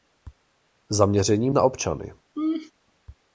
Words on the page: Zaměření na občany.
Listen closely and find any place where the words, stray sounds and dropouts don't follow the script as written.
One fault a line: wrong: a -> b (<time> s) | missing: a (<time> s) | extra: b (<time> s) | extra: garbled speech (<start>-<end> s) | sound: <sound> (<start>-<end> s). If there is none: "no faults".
sound: laugh (2.4-2.7 s)